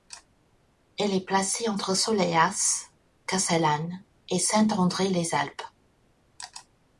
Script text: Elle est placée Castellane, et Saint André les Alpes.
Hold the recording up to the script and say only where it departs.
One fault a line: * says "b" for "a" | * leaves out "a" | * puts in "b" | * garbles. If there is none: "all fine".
* puts in "entre Soleilhas"